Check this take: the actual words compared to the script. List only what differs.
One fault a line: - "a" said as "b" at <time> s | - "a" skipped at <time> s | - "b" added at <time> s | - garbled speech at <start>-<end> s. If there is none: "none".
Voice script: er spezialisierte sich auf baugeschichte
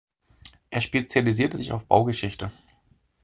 none